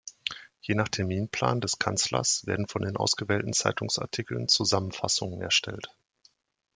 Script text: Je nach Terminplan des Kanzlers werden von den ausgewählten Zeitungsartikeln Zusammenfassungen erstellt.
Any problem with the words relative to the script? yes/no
no